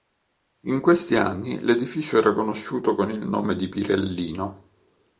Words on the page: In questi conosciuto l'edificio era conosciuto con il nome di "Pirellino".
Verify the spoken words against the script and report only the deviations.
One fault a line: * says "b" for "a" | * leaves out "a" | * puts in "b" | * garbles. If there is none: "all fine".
* says "anni" for "conosciuto"